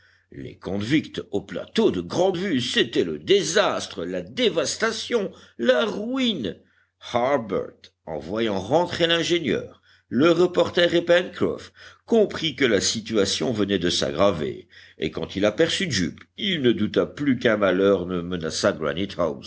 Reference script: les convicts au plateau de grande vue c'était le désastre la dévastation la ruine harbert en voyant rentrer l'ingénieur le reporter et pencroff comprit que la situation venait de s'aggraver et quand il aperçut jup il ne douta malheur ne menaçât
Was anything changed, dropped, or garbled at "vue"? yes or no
no